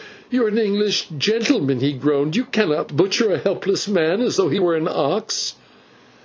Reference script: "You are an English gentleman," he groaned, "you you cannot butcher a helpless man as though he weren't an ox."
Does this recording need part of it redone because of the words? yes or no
yes